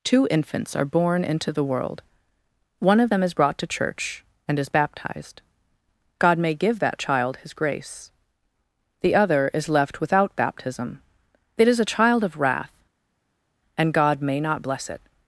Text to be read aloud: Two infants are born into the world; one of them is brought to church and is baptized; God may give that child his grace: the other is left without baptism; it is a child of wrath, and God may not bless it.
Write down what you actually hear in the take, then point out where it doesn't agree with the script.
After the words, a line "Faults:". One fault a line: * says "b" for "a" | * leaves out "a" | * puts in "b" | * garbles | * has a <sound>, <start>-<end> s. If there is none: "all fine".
Two infants are born into the world; one of them is brought to church and is baptized; God may give that child his grace: the other is left without baptism; it is a child of wrath, and God may not bless it.
Faults:
all fine